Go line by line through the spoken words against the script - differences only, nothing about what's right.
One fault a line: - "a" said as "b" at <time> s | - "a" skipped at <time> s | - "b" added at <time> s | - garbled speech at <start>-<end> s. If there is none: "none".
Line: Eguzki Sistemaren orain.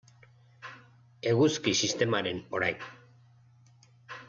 none